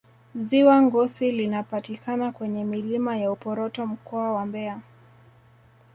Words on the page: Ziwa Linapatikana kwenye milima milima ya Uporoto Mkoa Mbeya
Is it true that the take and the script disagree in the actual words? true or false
true